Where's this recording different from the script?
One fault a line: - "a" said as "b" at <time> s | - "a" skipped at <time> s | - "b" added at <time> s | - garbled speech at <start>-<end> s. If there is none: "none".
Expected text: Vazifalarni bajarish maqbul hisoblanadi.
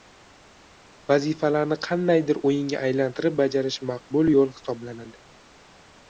- "qandaydir o‘yinga aylantirib" added at 1.9 s
- "yo‘l" added at 4.4 s